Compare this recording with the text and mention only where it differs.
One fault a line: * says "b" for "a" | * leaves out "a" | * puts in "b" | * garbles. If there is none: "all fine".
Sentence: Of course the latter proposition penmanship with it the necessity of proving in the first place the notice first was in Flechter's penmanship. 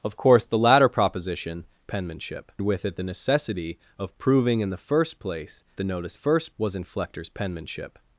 all fine